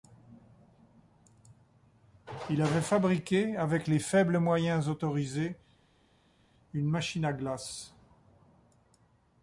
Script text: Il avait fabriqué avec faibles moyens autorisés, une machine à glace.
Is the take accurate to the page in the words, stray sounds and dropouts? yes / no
no